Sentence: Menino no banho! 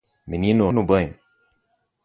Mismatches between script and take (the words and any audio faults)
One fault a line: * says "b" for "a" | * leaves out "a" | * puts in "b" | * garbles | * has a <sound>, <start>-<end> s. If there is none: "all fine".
all fine